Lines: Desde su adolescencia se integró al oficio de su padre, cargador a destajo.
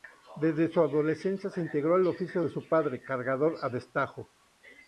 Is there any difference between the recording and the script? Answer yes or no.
no